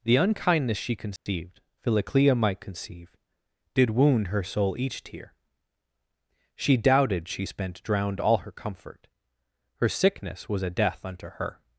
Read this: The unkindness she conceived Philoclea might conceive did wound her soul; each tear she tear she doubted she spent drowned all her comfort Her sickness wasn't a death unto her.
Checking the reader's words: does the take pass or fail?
fail